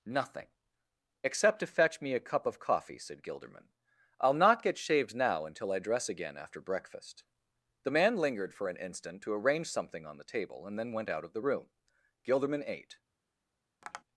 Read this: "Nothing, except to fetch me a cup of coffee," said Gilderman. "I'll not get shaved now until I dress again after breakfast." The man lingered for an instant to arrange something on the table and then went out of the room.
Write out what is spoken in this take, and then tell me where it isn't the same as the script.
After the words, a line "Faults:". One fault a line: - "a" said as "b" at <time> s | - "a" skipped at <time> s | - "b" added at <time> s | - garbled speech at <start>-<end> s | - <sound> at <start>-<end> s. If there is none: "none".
"Nothing, except to fetch me a cup of coffee," said Gilderman. "I'll not get shaved now until I dress again after breakfast." The man lingered for an instant to arrange something on the table and then went out of the room. Gilderman ate
Faults:
- "Gilderman ate" added at 12.2 s
- tap at 13.8-14.0 s